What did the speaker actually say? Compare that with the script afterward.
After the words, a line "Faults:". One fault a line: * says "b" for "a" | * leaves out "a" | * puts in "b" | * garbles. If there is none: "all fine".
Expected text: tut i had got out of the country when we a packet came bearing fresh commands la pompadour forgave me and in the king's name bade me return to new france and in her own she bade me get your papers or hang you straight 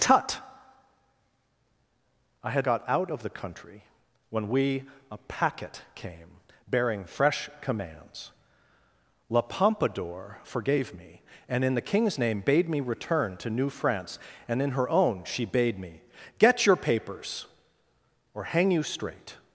tut i had got out of the country when we a packet came bearing fresh commands la pompadour forgave me and in the king's name bade me return to new france and in her own she bade me get your papers or hang you straight
Faults:
all fine